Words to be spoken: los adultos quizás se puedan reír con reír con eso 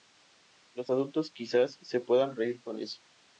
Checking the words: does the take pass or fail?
fail